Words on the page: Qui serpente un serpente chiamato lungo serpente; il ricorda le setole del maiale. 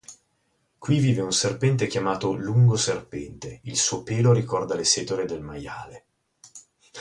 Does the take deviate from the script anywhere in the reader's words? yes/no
yes